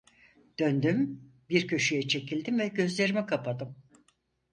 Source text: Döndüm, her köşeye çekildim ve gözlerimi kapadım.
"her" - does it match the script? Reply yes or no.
no